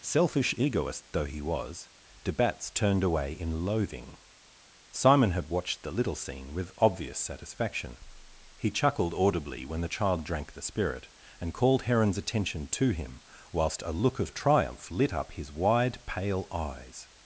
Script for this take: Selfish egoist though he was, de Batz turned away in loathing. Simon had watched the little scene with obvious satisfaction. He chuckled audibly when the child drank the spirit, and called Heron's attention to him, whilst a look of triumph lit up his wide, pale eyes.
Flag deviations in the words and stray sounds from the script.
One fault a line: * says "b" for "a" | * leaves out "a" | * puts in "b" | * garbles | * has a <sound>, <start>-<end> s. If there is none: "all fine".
all fine